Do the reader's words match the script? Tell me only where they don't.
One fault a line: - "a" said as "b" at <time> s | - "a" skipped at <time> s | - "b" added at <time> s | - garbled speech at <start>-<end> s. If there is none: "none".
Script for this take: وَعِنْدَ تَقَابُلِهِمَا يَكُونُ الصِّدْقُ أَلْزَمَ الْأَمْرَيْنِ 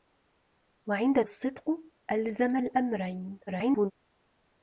- "تَقَابُلِهِمَا يَكُونُ" skipped at 1.2 s
- garbled speech at 3.5-3.9 s